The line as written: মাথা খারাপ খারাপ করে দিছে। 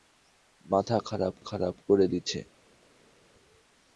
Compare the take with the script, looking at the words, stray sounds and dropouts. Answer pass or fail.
pass